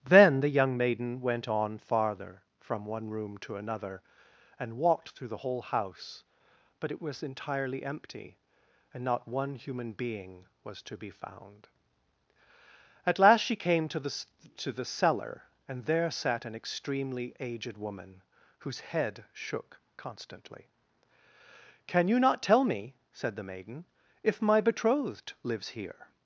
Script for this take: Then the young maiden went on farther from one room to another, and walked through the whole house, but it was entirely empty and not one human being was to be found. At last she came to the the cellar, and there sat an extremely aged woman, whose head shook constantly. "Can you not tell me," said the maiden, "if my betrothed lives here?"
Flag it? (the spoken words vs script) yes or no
yes